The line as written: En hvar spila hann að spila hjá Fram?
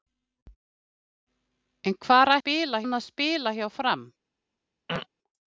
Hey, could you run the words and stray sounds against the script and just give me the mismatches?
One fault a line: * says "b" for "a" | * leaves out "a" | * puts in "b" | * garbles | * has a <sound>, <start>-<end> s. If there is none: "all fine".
* has a throat clearing, 4.9-5.1 s